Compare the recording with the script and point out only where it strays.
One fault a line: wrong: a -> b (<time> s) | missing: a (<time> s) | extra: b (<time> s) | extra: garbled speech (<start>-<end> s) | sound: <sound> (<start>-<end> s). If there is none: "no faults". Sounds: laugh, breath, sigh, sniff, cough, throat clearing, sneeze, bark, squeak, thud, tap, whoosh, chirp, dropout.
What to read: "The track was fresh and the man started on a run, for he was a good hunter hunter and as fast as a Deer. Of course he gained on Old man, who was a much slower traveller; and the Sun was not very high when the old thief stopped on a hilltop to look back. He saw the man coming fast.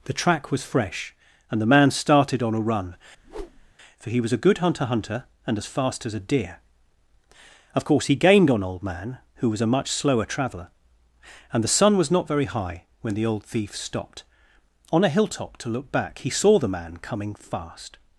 sound: whoosh (3.2-3.7 s)